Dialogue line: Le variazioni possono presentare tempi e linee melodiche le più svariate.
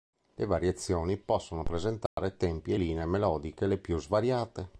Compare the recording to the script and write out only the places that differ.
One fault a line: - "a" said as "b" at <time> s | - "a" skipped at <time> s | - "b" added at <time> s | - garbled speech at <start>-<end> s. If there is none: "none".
none